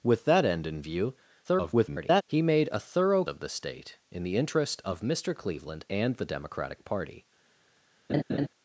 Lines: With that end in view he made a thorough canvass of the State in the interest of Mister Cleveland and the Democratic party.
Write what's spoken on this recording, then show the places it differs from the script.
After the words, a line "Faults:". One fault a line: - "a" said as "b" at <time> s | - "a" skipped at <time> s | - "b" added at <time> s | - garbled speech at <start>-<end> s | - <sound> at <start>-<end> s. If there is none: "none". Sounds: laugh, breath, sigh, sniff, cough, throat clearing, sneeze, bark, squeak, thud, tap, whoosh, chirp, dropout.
With that end in view [garbled] he made a thorough of the State in the interest of Mister Cleveland and the Democratic party.
Faults:
- garbled speech at 1.4-2.2 s
- "canvass" skipped at 3.2 s
- laugh at 8.1-8.5 s